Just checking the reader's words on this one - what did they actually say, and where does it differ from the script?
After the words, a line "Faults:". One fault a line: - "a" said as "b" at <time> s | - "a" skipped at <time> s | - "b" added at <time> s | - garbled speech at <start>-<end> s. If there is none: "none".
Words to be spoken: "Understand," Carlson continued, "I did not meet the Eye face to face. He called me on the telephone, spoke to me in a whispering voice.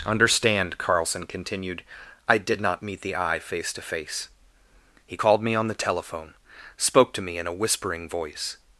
"Understand," Carlson continued, "I did not meet the Eye face to face. He called me on the telephone, spoke to me in a whispering voice.
Faults:
none